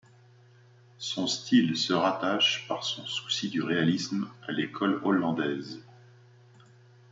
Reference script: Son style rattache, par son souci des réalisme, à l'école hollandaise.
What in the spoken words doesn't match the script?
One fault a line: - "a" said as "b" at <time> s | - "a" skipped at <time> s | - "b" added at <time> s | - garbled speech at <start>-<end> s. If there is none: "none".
- "se" added at 1.8 s
- "des" said as "du" at 3.5 s